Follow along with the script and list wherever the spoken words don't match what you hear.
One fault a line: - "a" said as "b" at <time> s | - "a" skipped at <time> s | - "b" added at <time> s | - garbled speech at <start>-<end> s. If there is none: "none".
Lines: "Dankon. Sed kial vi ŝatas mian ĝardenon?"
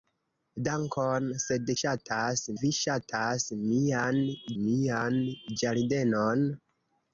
- "kial" said as "ŝatas" at 1.8 s
- "mian" added at 4.6 s